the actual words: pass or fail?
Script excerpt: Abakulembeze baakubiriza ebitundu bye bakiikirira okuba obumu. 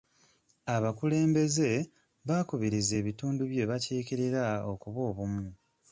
pass